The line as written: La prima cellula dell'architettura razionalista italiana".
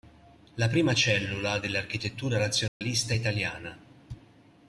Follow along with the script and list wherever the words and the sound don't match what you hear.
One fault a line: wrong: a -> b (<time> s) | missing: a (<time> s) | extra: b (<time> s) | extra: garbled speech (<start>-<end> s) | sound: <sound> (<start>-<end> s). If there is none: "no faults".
sound: dropout (2.7-2.8 s)